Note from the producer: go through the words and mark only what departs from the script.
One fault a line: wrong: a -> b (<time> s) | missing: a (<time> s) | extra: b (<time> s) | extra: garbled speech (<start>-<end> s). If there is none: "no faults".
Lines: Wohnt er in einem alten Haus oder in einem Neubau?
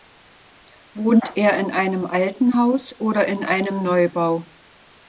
no faults